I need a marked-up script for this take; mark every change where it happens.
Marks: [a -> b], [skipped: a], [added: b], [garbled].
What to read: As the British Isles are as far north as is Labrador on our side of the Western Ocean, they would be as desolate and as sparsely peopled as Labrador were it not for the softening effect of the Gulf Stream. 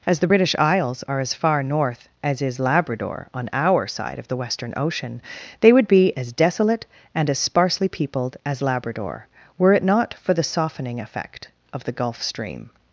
As the British Isles are as far north as is Labrador on our side of the Western Ocean, they would be as desolate and as sparsely peopled as Labrador were it not for the softening effect of the Gulf Stream.